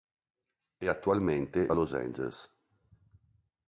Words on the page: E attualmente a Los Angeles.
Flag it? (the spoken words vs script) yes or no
no